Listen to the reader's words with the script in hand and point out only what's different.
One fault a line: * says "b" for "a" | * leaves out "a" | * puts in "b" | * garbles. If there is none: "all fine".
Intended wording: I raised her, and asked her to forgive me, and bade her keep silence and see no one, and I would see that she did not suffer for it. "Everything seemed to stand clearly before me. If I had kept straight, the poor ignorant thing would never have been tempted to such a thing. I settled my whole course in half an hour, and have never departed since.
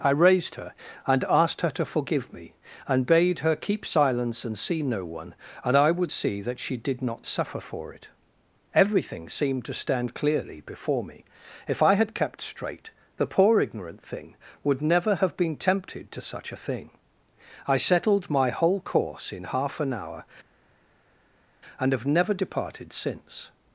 all fine